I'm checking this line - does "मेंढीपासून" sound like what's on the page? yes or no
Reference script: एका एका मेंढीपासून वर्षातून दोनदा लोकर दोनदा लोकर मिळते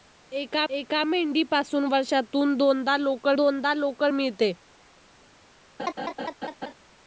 yes